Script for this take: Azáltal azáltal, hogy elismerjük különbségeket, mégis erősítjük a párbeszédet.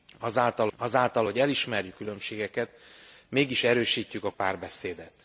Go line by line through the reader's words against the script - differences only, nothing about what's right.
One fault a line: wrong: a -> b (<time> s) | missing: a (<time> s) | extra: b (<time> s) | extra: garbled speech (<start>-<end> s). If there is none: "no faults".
no faults